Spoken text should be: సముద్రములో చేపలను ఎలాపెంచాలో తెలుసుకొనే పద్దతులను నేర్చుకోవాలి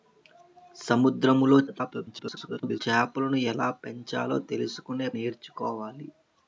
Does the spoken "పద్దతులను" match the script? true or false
false